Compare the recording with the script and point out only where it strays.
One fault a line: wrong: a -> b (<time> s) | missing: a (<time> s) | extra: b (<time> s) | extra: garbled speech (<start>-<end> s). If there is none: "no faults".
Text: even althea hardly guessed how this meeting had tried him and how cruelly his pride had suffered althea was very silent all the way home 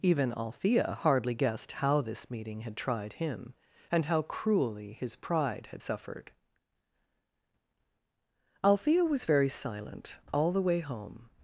no faults